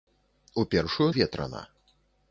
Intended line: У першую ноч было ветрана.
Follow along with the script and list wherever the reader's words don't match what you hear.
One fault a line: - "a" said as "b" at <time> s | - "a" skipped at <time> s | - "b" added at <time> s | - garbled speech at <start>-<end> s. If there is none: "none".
- "ноч было" skipped at 1.1 s